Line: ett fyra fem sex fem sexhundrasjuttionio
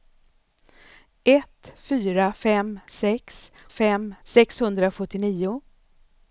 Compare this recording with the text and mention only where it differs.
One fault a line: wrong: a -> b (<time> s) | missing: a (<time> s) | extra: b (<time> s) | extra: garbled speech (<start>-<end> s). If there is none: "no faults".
no faults